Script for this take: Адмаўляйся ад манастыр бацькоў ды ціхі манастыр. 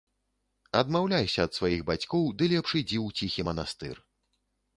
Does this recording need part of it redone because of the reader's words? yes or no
yes